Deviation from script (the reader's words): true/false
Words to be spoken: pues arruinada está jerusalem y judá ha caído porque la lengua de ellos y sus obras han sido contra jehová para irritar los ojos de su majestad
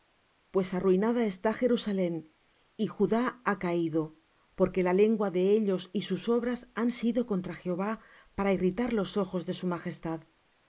false